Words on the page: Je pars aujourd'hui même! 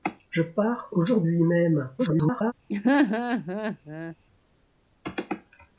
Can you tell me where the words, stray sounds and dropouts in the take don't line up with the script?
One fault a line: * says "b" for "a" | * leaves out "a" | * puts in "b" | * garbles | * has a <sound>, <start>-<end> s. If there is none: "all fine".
* garbles
* has a laugh, 2.7-4.2 s